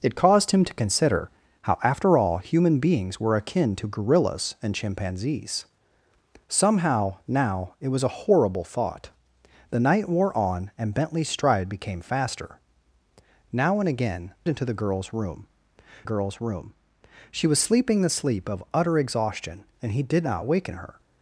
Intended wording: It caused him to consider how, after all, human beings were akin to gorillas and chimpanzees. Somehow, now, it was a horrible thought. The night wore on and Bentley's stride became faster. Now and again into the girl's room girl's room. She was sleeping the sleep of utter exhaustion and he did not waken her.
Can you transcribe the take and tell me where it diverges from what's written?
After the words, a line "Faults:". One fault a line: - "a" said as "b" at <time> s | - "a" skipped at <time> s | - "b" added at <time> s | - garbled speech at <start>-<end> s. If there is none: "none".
It caused him to consider how, after all, human beings were akin to gorillas and chimpanzees. Somehow, now, it was a horrible thought. The night wore on and Bentley's stride became faster. Now and again into the girl's room girl's room. She was sleeping the sleep of utter exhaustion and he did not waken her.
Faults:
none